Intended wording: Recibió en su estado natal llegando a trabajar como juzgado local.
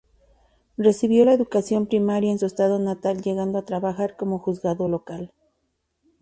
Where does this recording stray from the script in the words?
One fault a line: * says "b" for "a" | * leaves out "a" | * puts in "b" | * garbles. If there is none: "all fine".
* puts in "la educación primaria"